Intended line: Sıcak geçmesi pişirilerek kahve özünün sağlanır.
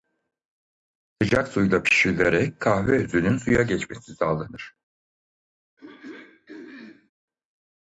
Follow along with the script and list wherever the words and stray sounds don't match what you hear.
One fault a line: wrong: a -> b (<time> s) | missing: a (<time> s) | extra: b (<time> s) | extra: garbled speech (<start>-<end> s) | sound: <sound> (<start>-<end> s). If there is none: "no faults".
wrong: geçmesi -> suyla (1.5 s)
extra: suya geçmesi (3.3 s)
sound: throat clearing (5.8-7.1 s)